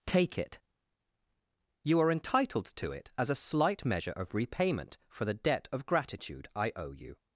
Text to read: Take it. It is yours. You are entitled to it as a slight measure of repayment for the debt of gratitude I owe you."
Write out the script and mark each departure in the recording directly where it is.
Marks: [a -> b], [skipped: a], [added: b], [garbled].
Take it. [skipped: It is yours.] You are entitled to it as a slight measure of repayment for the debt of gratitude I owe you."